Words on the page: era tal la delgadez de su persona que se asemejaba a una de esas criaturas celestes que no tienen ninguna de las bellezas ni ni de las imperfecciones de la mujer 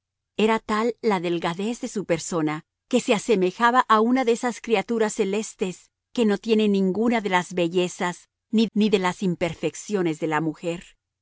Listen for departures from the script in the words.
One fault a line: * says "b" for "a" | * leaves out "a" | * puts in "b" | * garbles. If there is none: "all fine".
all fine